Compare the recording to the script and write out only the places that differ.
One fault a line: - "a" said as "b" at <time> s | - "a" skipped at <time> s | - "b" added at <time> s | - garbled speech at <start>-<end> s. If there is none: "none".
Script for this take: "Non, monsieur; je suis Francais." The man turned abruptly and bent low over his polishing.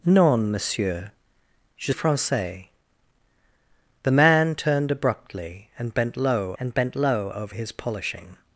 - "suis" skipped at 1.9 s
- "and bent low" added at 6.6 s